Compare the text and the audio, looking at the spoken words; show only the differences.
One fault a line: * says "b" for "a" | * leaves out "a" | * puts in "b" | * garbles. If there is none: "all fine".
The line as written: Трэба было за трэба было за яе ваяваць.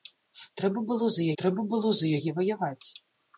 all fine